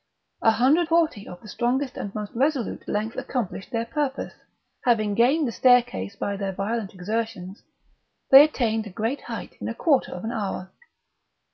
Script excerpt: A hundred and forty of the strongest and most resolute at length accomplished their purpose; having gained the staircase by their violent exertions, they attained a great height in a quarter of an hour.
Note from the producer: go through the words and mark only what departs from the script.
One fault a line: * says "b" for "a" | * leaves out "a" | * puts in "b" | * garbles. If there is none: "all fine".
* leaves out "and"
* leaves out "at"